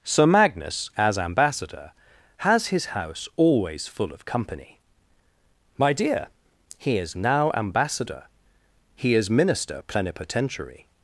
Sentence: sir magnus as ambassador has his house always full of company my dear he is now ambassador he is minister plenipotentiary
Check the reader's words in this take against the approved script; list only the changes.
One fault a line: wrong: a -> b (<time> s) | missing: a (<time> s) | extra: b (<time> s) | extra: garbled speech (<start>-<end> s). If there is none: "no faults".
no faults